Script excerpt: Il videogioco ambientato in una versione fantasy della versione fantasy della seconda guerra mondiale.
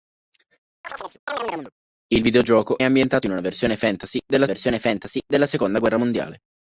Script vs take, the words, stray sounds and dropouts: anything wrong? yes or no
yes